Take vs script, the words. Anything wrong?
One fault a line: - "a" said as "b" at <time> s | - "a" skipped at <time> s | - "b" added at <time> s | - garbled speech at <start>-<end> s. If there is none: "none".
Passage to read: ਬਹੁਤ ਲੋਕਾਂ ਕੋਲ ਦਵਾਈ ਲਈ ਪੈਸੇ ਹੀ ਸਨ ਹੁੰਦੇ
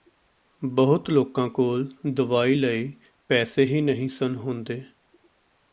- "ਨਹੀਂ" added at 3.8 s